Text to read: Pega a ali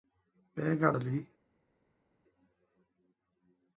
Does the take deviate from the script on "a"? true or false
false